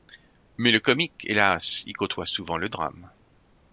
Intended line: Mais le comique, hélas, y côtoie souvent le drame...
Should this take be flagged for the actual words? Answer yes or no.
no